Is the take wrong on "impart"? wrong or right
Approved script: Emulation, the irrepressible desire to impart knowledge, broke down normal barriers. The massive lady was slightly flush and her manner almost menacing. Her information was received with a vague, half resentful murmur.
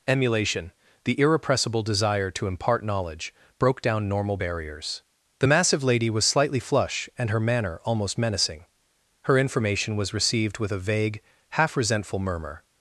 right